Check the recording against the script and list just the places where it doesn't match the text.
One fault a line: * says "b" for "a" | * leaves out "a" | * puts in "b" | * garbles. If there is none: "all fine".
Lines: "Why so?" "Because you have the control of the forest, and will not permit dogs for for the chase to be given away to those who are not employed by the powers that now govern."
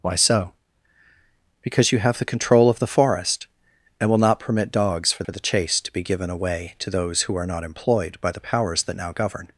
all fine